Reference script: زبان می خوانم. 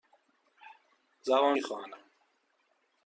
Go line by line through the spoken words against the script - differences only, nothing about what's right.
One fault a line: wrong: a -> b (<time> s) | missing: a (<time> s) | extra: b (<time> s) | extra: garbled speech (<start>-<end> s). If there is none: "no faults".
no faults